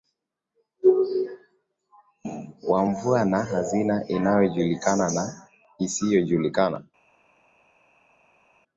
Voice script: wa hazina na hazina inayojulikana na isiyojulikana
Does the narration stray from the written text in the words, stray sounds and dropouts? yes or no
yes